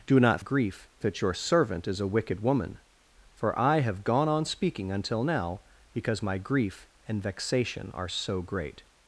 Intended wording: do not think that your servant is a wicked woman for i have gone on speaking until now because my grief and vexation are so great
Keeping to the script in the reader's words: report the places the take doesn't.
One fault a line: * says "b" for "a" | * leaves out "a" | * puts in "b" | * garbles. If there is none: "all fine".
* says "grief" for "think"